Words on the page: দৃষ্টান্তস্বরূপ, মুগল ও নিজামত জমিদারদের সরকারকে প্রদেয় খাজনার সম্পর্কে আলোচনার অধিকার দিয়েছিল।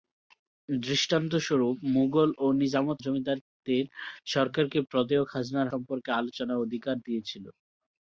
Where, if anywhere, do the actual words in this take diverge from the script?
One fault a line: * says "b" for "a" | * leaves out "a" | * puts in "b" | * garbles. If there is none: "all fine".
all fine